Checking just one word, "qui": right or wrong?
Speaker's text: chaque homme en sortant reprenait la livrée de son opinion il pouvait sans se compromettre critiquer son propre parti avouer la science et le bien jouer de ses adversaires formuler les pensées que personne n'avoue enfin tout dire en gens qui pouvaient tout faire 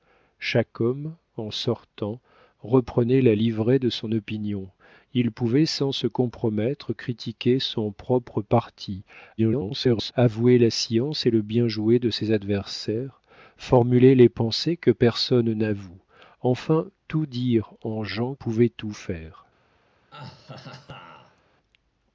wrong